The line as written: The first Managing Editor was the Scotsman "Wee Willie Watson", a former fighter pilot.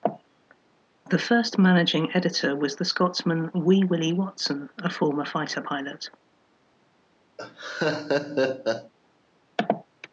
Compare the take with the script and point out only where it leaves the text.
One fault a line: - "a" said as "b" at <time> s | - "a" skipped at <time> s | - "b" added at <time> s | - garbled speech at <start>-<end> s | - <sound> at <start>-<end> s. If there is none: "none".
- laugh at 7.4-8.9 s